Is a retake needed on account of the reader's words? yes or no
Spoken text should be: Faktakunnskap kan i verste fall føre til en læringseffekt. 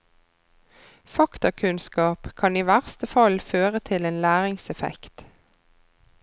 no